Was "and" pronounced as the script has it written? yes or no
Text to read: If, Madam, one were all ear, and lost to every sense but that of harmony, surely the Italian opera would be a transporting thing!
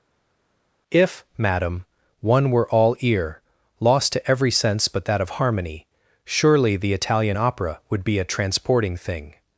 no